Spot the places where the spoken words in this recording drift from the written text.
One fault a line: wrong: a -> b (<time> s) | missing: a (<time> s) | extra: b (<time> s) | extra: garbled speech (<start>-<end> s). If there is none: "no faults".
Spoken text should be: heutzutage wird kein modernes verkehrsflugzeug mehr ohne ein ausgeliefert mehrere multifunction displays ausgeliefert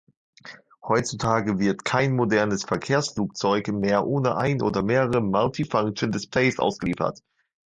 wrong: ausgeliefert -> oder (4.6 s)